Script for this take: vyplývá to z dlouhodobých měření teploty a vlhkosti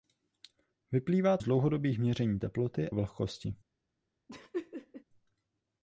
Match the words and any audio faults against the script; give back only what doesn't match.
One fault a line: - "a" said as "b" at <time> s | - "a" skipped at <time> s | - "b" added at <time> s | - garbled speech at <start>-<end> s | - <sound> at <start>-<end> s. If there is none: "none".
- "to" skipped at 1.4 s
- "a" skipped at 2.9 s
- laugh at 4.3-5.0 s